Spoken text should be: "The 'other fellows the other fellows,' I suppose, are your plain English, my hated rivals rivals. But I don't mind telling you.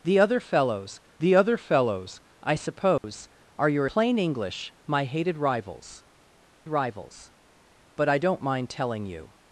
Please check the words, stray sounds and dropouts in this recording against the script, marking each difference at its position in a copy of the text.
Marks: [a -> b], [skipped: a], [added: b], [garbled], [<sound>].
"The 'other fellows the other fellows,' I suppose, [dropout] are your plain English, my hated rivals rivals. But I don't mind telling you.